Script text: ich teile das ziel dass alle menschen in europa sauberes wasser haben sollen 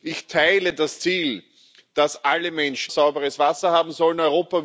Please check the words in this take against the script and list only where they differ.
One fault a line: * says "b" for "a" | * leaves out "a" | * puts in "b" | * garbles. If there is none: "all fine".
* leaves out "in europa"